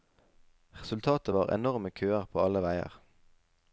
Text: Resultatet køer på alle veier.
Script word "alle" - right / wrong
right